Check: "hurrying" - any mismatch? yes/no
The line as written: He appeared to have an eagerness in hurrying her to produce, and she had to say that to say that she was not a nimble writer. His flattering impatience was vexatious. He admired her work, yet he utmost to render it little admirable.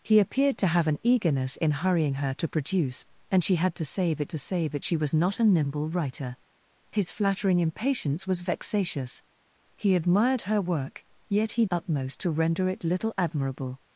no